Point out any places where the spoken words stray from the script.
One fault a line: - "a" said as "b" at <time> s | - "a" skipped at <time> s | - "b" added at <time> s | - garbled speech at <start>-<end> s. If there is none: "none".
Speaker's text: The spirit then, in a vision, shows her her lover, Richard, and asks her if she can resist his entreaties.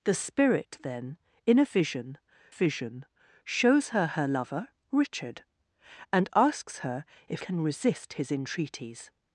- "vision" added at 2.5 s
- "she" skipped at 7.4 s